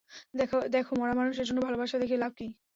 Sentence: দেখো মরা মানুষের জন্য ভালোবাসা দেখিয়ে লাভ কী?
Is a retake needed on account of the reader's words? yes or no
no